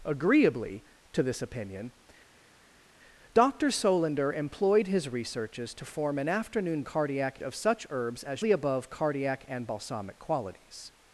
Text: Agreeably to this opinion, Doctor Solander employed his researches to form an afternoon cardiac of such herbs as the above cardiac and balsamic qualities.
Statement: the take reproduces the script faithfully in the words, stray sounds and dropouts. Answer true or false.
true